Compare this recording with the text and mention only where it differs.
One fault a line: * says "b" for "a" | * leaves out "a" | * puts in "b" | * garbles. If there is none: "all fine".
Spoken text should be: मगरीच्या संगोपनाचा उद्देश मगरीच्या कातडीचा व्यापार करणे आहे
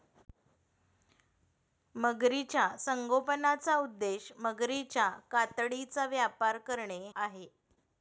all fine